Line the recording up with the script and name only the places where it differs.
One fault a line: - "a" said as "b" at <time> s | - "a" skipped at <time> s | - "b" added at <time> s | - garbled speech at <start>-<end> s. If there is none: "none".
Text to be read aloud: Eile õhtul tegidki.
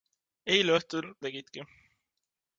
none